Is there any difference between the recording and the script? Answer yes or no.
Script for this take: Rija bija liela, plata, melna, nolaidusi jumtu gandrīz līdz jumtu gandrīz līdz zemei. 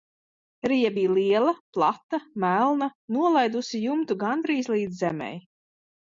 yes